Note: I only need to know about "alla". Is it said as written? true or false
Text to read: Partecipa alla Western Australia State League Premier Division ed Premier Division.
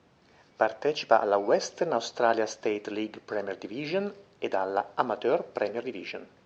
true